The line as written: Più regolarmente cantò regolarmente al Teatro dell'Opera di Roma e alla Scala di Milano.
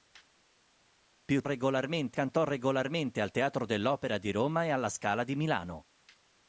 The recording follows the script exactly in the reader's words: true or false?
true